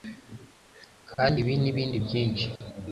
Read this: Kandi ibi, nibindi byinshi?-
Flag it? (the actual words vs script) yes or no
no